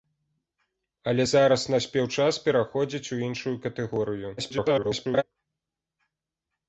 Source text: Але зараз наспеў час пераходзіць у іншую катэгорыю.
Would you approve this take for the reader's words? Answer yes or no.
no